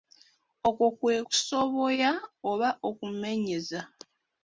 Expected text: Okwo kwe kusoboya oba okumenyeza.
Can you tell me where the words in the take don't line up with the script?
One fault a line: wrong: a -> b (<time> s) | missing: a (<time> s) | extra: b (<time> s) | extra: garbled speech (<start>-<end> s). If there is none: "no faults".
no faults